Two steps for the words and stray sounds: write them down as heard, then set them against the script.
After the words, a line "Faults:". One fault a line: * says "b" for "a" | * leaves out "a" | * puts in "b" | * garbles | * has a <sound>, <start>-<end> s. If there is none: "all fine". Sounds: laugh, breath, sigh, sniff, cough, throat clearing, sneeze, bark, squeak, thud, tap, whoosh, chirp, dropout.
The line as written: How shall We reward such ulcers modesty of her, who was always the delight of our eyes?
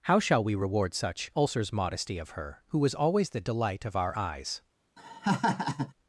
How shall We reward such ulcers modesty of her, who was always the delight of our eyes?
Faults:
* has a laugh, 5.0-5.9 s